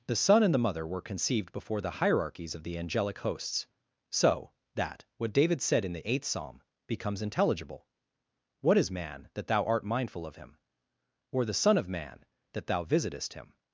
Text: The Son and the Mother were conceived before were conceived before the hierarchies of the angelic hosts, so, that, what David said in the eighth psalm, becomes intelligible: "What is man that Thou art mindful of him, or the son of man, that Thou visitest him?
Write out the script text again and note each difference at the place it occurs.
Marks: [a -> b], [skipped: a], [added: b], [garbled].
The Son and the Mother were conceived before [skipped: were conceived before] the hierarchies of the angelic hosts, so, that, what David said in the eighth psalm, becomes intelligible: "What is man that Thou art mindful of him, or the son of man, that Thou visitest him?